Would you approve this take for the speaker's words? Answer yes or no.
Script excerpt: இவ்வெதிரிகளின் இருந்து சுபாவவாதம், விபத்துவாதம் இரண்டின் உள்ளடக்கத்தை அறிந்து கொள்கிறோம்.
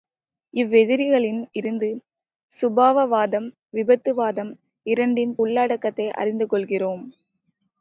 yes